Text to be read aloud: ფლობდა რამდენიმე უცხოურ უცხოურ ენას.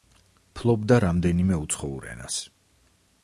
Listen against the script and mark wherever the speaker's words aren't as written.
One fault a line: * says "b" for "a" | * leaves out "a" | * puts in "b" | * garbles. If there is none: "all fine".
* leaves out "უცხოურ"